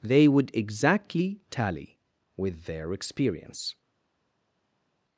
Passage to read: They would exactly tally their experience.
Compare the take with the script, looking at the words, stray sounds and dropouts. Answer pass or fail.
fail